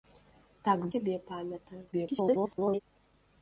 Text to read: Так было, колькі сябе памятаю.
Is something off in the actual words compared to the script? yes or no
yes